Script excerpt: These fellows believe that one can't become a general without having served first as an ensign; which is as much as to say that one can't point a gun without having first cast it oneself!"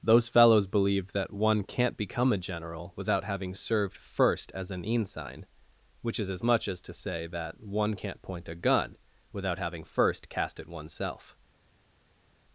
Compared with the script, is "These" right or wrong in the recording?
wrong